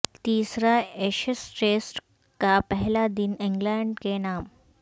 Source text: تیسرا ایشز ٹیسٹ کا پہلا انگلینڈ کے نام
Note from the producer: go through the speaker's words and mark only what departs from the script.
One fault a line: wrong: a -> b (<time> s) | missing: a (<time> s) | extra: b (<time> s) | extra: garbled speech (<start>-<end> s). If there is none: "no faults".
extra: دن (3.2 s)